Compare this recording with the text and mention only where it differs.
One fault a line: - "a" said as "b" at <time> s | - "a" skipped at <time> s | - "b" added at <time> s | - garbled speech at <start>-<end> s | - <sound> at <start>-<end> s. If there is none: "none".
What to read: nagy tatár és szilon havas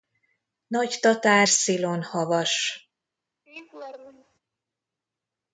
- "és" skipped at 1.5 s
- laugh at 3.5-4.4 s